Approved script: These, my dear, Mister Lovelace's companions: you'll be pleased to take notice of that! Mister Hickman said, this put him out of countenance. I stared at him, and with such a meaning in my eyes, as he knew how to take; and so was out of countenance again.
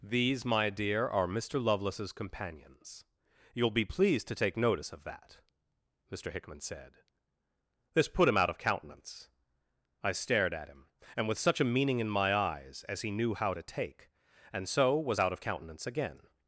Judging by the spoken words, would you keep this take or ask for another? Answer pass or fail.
fail